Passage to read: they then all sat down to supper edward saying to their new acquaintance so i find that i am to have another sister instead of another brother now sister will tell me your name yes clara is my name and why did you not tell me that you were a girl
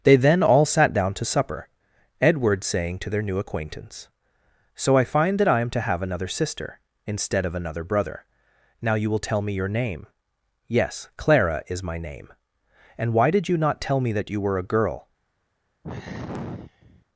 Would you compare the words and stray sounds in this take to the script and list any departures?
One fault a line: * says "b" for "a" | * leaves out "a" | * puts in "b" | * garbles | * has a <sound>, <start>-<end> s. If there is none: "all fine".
* says "you" for "sister"
* has a sigh, 15.8-17.1 s